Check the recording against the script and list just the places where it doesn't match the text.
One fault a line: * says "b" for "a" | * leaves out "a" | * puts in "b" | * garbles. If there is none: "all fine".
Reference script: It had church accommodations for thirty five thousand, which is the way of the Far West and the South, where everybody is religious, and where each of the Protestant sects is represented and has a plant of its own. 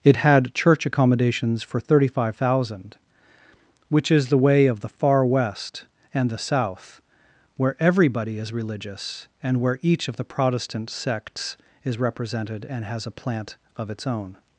all fine